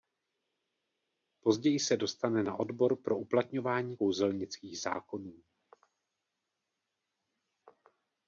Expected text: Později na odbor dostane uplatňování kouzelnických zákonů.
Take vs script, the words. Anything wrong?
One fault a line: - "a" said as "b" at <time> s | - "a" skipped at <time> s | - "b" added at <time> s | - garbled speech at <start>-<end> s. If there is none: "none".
- "se dostane" added at 1.8 s
- "dostane" said as "pro" at 3.0 s